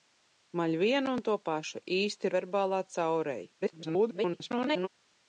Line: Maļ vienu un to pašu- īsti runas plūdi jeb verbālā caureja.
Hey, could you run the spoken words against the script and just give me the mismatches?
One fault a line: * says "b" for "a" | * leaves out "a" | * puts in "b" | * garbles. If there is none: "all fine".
* leaves out "runas plūdi jeb"
* garbles